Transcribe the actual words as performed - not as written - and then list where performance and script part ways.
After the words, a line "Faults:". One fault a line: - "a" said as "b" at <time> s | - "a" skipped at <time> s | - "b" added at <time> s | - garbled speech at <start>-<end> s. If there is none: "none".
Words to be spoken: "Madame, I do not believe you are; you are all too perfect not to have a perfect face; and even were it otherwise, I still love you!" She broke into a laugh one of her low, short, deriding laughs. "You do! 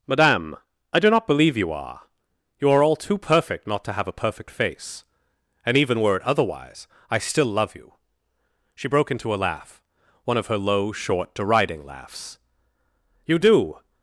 "Madame, I do not believe you are; you are all too perfect not to have a perfect face; and even were it otherwise, I still love you!" She broke into a laugh one of her low, short, deriding laughs. "You do!
Faults:
none